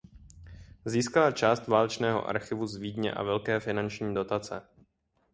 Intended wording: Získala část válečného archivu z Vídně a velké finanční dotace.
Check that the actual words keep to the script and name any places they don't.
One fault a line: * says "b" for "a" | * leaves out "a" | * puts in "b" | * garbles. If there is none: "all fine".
all fine